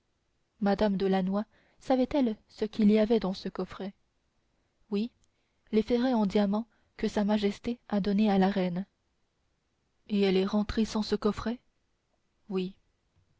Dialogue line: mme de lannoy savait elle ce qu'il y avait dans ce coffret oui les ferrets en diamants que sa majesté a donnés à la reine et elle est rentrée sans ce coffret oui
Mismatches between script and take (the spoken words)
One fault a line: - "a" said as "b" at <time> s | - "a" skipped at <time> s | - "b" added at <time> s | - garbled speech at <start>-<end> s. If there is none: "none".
none